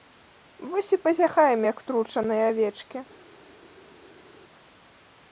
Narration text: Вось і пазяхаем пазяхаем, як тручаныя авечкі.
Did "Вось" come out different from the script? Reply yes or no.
no